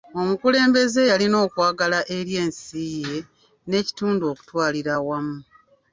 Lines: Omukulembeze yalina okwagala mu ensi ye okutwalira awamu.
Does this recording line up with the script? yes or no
no